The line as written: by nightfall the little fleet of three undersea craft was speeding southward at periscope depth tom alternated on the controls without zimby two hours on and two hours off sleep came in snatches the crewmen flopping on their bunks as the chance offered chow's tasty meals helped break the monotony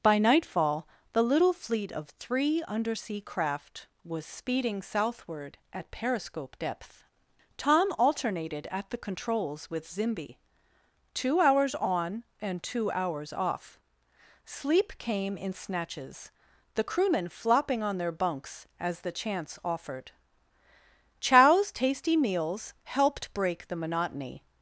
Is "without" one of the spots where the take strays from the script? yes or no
yes